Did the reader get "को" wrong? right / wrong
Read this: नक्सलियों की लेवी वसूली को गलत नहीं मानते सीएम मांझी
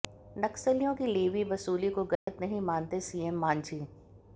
right